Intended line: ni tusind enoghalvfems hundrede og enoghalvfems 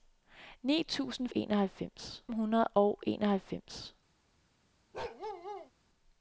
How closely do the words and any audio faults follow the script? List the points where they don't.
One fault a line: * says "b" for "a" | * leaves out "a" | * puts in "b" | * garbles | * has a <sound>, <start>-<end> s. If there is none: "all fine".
* has a bark, 4.9-5.7 s